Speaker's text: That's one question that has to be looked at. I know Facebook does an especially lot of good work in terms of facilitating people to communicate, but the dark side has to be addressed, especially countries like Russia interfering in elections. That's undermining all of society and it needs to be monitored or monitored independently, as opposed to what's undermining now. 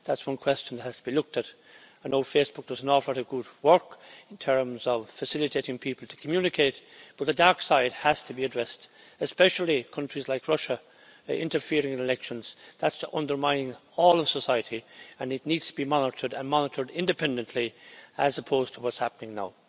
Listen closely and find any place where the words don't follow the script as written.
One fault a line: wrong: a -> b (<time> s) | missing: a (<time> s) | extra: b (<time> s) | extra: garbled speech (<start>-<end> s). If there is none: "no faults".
wrong: especially -> awful (2.9 s)
wrong: or -> and (16.3 s)
wrong: undermining -> happening (19.0 s)